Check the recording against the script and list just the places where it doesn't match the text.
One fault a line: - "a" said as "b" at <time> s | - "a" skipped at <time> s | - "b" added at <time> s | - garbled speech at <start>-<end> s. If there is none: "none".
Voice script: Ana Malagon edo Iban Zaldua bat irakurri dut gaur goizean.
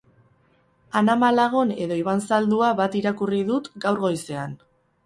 none